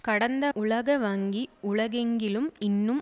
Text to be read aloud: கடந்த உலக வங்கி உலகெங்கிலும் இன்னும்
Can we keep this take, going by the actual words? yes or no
yes